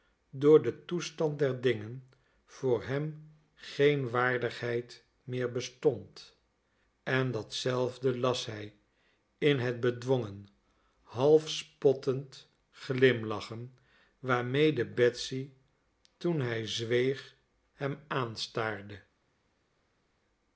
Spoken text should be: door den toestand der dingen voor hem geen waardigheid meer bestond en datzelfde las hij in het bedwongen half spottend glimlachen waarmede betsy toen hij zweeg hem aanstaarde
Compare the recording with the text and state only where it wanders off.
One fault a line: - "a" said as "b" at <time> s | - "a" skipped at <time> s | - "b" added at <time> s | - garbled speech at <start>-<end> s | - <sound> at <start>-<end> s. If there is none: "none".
none